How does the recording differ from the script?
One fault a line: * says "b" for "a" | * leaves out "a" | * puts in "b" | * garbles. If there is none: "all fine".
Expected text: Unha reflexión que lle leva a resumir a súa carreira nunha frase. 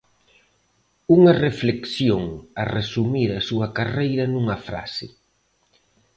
* leaves out "que lle leva"